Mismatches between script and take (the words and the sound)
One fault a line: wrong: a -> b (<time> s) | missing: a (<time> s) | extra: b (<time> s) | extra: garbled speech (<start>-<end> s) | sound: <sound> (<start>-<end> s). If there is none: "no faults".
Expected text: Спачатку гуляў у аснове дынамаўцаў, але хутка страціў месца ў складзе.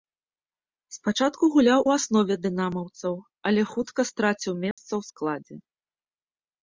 sound: dropout (4.7-4.8 s)